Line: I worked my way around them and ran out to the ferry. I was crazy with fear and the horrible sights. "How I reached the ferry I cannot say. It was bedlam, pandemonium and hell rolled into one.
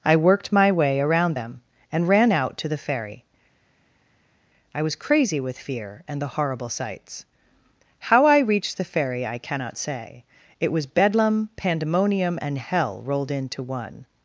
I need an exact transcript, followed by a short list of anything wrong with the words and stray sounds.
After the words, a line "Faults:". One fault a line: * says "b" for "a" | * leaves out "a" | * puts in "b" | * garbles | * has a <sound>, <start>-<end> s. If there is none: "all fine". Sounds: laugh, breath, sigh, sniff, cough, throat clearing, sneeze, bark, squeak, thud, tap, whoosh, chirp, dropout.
I worked my way around them and ran out to the ferry. I was crazy with fear and the horrible sights. "How I reached the ferry I cannot say. It was bedlam, pandemonium and hell rolled into one.
Faults:
all fine